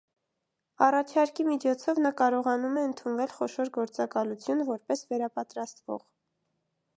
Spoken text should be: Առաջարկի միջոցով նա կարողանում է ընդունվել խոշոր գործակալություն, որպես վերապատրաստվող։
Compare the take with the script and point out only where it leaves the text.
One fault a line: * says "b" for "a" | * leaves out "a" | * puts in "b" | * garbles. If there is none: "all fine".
all fine